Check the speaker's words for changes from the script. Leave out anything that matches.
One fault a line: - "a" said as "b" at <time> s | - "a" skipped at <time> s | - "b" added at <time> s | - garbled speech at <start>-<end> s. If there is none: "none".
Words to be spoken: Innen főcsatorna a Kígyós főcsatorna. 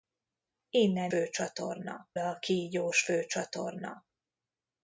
none